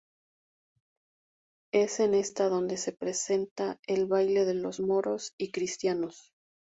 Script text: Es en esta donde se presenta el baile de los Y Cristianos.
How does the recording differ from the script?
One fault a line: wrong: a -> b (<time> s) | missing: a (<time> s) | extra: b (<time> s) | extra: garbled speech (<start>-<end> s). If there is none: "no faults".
extra: Moros (4.8 s)